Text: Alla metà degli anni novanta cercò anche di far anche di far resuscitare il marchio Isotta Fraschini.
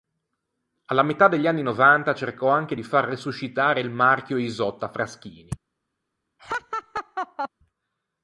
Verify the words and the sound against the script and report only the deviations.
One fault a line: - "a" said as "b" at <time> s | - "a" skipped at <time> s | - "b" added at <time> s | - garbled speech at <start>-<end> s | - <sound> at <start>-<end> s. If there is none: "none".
- "anche di far" skipped at 3.0 s
- laugh at 6.4-7.5 s